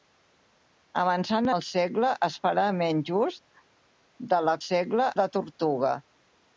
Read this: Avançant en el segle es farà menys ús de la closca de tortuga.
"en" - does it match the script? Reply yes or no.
no